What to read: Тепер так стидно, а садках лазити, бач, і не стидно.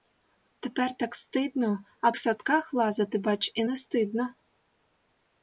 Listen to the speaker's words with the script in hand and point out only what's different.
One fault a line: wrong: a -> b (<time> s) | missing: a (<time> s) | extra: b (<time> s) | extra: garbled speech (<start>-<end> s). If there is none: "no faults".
no faults